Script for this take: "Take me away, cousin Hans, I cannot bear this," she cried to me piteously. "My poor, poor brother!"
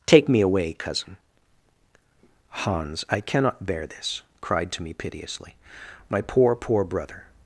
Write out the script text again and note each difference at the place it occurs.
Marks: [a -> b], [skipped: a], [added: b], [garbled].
"Take me away, cousin Hans, I cannot bear this," [skipped: she] cried to me piteously. "My poor, poor brother!"